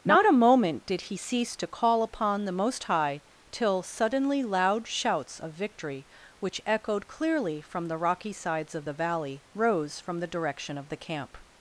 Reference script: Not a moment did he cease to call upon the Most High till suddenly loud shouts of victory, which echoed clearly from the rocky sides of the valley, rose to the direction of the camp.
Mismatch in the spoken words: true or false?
true